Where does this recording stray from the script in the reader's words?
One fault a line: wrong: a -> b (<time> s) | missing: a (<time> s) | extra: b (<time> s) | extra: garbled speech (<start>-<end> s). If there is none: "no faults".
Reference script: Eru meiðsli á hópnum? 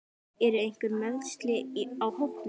extra: einhver (0.6 s)